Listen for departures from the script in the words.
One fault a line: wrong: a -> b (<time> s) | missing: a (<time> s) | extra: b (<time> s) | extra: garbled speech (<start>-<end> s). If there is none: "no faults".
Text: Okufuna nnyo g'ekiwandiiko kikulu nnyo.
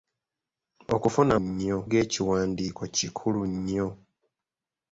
no faults